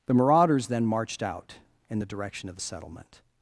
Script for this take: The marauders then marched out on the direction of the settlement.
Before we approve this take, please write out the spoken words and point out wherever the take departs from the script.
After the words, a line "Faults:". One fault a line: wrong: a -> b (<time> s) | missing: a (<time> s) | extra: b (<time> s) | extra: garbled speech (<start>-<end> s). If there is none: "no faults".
The marauders then marched out in the direction of the settlement.
Faults:
wrong: on -> in (1.9 s)